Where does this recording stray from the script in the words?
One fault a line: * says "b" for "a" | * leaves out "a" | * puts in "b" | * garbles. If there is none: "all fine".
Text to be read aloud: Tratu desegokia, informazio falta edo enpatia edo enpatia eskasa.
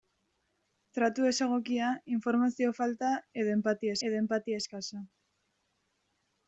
all fine